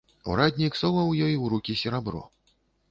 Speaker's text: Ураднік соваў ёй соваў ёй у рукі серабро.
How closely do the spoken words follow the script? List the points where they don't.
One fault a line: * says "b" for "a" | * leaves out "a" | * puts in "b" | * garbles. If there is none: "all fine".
* leaves out "соваў ёй"